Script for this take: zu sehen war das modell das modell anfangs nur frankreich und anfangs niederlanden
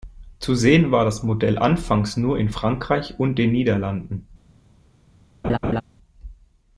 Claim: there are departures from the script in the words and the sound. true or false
true